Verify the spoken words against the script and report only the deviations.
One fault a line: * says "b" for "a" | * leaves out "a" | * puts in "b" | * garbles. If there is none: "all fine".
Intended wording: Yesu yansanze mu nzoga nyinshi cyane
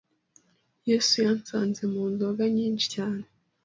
all fine